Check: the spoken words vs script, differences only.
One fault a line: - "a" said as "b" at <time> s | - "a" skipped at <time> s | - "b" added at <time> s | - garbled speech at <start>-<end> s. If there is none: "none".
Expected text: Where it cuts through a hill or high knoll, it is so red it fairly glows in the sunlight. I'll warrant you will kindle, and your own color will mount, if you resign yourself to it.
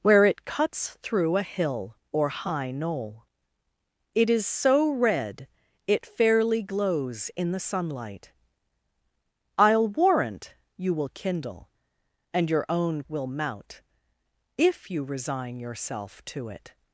- "color" skipped at 13.0 s